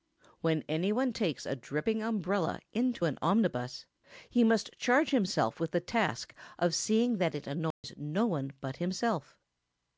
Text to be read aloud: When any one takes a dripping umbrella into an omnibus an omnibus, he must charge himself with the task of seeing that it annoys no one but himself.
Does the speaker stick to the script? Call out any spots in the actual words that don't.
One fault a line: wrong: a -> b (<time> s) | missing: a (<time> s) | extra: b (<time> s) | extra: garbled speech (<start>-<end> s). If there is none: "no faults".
missing: an omnibus (3.8 s)